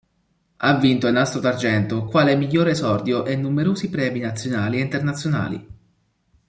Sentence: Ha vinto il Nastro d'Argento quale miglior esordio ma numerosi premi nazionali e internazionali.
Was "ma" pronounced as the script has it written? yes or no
no